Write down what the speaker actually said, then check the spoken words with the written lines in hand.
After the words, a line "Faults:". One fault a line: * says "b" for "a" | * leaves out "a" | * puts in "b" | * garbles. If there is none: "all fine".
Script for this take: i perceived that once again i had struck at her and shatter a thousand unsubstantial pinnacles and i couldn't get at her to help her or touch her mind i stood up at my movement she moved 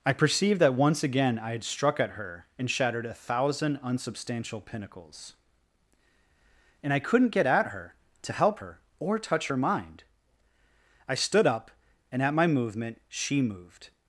i perceived that once again i had struck at her and shattered a thousand unsubstantial pinnacles and i couldn't get at her to help her or touch her mind i stood up and at my movement she moved
Faults:
* says "shattered" for "shatter"
* puts in "and"